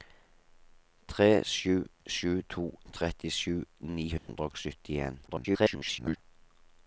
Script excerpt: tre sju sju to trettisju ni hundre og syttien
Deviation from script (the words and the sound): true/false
true